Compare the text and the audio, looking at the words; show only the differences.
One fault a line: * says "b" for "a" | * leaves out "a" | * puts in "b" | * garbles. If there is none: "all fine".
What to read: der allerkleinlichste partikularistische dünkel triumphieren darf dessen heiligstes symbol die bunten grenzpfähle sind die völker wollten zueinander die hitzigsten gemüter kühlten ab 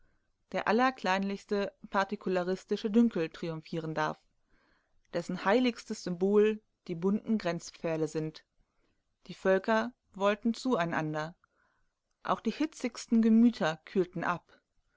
* puts in "auch"